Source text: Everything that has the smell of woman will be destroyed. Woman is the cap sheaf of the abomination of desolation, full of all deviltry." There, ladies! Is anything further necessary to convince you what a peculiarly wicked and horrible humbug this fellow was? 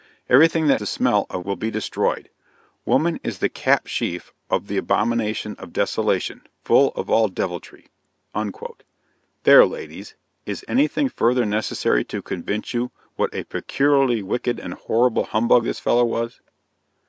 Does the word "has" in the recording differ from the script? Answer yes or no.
yes